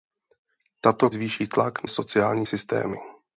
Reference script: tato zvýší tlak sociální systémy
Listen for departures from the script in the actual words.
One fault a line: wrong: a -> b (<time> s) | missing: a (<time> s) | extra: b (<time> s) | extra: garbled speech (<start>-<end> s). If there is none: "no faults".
no faults